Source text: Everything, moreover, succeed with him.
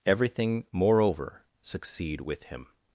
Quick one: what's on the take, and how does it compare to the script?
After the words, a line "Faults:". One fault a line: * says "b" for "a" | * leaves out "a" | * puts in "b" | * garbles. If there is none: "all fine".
Everything, moreover, succeed with him.
Faults:
all fine